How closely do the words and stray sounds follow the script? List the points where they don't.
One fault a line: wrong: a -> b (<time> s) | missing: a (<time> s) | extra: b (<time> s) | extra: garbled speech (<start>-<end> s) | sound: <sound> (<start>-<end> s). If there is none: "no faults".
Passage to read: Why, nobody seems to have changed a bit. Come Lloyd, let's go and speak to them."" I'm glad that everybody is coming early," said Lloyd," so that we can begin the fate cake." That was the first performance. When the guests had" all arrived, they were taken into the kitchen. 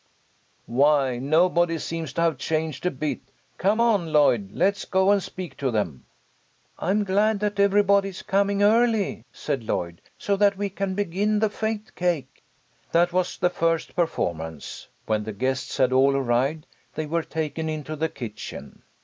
extra: on (3.8 s)